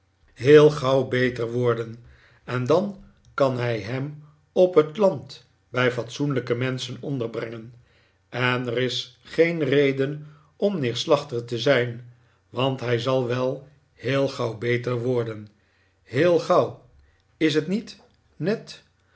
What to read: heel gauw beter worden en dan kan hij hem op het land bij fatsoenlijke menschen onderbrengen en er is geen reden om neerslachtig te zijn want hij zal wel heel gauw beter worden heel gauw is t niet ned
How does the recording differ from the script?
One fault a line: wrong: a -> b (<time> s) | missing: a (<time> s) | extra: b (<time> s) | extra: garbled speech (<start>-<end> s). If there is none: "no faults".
no faults